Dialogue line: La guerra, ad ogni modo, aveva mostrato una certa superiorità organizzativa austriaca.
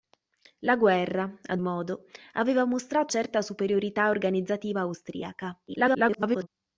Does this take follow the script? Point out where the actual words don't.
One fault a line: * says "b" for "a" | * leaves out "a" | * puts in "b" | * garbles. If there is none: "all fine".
* leaves out "ogni"
* leaves out "una"
* garbles